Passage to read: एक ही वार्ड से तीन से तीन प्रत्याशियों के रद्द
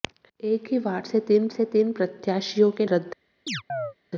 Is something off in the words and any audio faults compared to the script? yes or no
yes